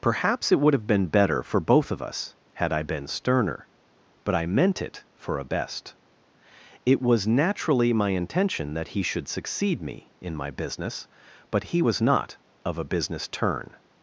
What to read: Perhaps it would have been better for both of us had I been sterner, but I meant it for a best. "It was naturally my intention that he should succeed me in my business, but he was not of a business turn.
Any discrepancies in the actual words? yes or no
no